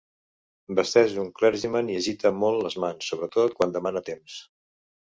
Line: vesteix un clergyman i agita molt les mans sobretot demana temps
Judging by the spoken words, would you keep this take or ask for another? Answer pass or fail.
fail